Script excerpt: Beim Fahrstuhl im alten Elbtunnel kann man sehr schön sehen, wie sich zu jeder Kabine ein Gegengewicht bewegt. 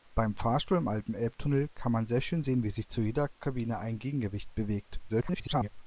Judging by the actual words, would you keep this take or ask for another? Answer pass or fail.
fail